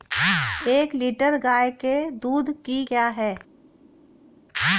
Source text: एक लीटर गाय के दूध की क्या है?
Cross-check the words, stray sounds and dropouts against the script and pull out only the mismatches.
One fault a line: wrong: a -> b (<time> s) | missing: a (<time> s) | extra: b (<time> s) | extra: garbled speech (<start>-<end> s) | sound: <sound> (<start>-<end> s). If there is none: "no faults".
no faults